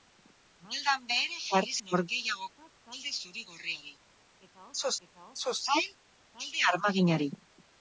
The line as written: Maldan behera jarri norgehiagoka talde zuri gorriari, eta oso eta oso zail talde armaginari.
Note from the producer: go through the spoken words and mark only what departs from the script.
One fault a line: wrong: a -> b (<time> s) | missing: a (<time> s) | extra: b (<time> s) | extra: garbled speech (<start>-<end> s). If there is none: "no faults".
no faults